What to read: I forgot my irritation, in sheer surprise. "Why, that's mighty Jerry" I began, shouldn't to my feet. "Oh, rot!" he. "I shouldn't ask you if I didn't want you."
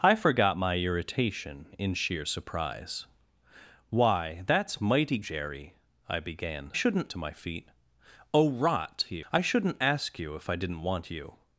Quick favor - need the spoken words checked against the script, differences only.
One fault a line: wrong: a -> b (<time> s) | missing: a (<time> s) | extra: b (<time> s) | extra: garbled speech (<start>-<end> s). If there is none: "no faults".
no faults